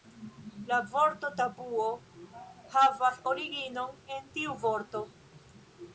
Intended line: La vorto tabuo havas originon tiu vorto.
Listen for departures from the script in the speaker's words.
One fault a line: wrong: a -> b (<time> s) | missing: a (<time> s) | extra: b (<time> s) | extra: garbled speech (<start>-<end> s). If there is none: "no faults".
extra: en (4.2 s)